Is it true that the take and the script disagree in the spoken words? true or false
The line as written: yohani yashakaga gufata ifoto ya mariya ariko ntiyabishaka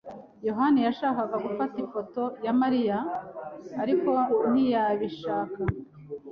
false